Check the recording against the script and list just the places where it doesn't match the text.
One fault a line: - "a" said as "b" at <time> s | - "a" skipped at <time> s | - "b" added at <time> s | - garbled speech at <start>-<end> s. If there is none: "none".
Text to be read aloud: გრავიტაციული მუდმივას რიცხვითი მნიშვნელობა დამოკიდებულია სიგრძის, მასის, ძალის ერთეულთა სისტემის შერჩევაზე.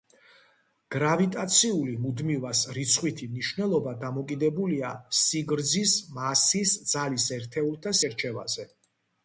- "სისტემის" skipped at 8.0 s